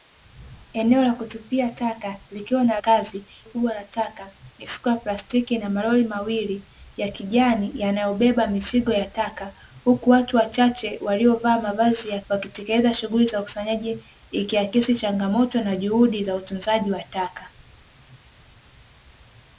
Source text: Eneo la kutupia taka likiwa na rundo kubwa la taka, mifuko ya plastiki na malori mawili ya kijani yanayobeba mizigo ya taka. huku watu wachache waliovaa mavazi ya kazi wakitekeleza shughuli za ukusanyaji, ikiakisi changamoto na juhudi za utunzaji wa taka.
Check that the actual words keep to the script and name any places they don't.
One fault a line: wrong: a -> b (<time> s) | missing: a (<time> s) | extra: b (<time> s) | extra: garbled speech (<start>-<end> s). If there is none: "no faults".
wrong: rundo -> kazi (2.8 s)
missing: kazi (12.2 s)